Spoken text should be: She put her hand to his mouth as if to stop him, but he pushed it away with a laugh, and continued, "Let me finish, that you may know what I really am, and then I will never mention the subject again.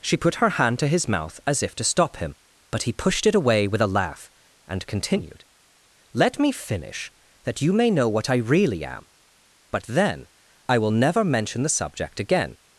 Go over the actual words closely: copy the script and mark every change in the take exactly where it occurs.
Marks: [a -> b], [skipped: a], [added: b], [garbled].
She put her hand to his mouth as if to stop him, but he pushed it away with a laugh, and continued, "Let me finish, that you may know what I really am, [and -> but] then I will never mention the subject again.